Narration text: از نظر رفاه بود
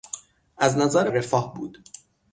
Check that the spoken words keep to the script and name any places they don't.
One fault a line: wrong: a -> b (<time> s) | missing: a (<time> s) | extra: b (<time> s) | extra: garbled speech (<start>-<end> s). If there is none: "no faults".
no faults